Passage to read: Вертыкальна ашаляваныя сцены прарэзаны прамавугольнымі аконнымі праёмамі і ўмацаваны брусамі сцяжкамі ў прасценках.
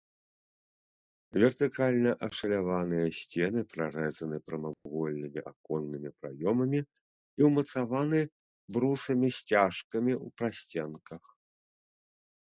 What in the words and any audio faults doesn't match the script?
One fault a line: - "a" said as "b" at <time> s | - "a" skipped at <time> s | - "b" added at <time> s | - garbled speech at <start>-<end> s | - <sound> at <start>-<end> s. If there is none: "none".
- dropout at 4.7-4.9 s